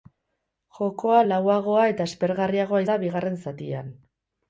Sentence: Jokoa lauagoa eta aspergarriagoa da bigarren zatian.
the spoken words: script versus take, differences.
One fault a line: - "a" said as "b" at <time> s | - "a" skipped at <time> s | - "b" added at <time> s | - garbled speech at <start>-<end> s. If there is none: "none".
none